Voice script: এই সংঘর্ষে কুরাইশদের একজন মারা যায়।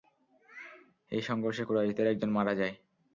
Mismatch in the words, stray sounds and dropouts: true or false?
false